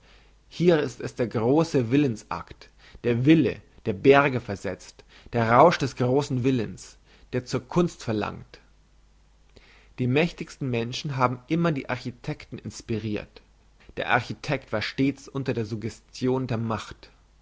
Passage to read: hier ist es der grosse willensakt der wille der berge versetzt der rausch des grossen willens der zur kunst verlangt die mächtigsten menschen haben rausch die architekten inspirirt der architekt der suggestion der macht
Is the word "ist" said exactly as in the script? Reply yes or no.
yes